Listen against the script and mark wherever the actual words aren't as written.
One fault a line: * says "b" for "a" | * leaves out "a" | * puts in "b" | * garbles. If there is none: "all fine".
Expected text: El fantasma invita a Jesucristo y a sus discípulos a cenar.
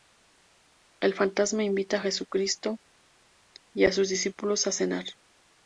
all fine